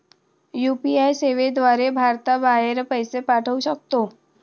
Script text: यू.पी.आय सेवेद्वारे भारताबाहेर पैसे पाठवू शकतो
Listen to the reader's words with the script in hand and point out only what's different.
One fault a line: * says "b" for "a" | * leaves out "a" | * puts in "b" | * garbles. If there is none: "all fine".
all fine